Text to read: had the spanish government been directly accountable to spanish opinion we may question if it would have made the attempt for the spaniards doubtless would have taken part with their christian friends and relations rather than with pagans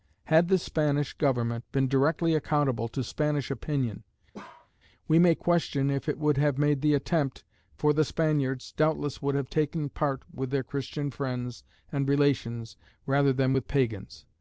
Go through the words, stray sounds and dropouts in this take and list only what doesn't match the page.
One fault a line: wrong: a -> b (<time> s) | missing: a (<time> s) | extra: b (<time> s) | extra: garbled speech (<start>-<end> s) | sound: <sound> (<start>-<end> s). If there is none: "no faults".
sound: bark (4.3-4.7 s)